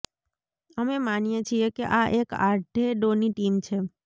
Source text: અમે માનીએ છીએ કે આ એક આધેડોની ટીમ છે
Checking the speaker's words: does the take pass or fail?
pass